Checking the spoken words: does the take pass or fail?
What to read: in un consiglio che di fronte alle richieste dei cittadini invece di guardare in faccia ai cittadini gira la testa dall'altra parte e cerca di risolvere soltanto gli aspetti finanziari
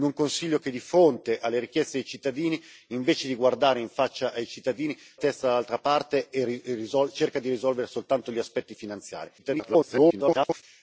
fail